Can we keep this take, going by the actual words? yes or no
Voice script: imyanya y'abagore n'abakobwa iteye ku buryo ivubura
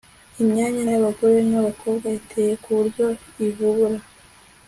yes